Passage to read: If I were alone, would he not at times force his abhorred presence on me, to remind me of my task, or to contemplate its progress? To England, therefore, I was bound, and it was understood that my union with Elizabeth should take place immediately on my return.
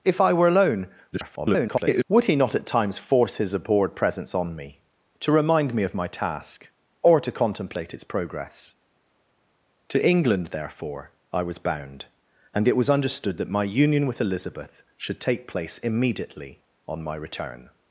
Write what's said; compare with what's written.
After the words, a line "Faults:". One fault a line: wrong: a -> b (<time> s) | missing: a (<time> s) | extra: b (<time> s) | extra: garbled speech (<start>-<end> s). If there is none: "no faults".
If I were alone, [garbled] would he not at times force his abhorred presence on me, to remind me of my task, or to contemplate its progress? To England, therefore, I was bound, and it was understood that my union with Elizabeth should take place immediately on my return.
Faults:
extra: garbled speech (1.1-2.0 s)